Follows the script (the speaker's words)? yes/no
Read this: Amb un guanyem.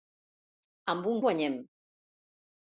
yes